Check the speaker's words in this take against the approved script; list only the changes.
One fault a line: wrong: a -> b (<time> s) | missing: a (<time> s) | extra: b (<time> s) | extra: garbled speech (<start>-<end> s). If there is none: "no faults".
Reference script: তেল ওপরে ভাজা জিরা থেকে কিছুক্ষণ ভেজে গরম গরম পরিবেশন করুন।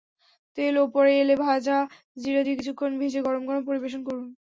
extra: এলে (1.2 s)
wrong: থেকে -> দিয়ে (2.4 s)